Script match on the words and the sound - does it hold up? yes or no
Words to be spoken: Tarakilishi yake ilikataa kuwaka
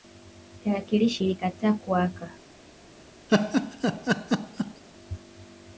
no